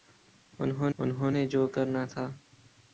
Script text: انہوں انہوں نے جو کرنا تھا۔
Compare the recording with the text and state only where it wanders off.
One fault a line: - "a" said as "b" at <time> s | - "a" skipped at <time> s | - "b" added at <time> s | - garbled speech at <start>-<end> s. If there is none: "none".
none